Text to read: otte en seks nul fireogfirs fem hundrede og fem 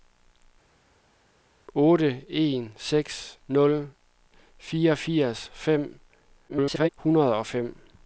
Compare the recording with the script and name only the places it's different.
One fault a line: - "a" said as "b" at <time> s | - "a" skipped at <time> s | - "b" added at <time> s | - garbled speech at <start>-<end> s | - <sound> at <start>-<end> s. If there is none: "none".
- garbled speech at 6.5-6.9 s